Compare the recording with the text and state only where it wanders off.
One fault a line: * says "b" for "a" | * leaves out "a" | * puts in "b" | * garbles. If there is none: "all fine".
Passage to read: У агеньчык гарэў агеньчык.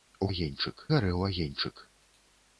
all fine